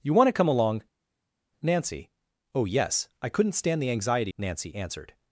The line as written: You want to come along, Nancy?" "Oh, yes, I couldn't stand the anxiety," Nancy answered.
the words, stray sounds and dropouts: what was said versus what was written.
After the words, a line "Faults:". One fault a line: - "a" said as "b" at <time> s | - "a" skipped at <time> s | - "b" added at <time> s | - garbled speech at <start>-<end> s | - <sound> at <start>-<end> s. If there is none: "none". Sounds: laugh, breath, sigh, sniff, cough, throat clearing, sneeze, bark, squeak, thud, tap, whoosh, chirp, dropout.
You want to come along, Nancy?" "Oh, yes, I couldn't stand the anxiety," Nancy answered.
Faults:
none